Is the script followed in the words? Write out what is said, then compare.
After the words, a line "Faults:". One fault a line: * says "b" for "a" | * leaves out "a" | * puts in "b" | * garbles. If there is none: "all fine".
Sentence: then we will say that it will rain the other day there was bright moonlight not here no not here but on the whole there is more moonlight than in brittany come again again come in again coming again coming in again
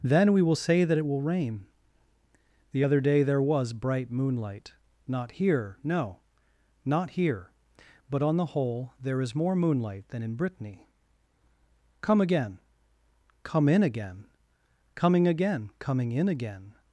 then we will say that it will rain the other day there was bright moonlight not here no not here but on the whole there is more moonlight than in brittany come again come in again coming again coming in again
Faults:
* leaves out "again"